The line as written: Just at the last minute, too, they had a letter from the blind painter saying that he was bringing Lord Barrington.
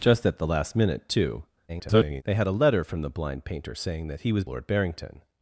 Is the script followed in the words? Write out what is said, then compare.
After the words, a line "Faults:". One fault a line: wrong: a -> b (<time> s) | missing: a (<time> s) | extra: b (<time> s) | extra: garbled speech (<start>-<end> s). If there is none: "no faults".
Just at the last minute, too, [garbled] they had a letter from the blind painter saying that he was Lord Barrington.
Faults:
extra: garbled speech (1.7-2.2 s)
missing: bringing (4.4 s)